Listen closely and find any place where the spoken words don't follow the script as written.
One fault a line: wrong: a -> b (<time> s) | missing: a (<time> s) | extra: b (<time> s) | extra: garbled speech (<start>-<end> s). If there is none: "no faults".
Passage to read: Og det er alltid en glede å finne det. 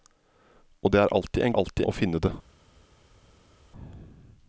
wrong: glede -> alltid (1.6 s)